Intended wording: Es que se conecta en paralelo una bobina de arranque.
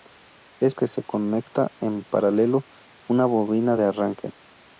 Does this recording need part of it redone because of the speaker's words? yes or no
no